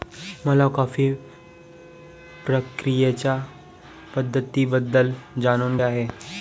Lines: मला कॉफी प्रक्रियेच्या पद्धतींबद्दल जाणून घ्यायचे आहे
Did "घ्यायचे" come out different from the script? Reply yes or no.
yes